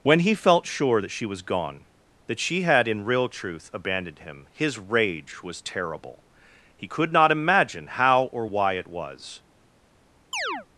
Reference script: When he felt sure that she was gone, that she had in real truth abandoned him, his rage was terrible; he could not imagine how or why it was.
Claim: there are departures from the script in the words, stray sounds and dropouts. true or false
true